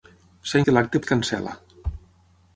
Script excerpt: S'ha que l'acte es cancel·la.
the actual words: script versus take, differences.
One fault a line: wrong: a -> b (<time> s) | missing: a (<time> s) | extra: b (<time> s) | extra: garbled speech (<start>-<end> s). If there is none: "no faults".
no faults